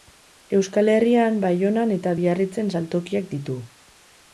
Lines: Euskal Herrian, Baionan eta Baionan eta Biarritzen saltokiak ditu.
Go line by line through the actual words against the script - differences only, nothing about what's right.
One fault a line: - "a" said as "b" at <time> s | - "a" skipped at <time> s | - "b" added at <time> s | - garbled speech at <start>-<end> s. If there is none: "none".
- "Baionan eta" skipped at 2.2 s